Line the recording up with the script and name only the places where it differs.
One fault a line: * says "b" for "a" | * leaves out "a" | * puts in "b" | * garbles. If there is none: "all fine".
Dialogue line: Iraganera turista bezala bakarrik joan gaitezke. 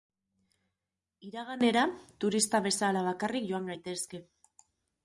all fine